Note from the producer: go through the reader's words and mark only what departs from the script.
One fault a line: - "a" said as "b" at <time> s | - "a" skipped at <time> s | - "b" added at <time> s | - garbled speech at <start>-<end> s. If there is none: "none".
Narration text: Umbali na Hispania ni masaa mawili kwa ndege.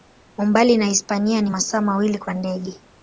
none